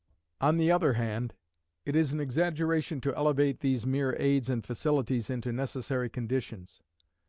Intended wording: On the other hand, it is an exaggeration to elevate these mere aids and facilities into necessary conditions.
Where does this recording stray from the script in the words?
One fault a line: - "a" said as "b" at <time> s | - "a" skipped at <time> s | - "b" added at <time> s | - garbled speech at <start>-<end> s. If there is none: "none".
none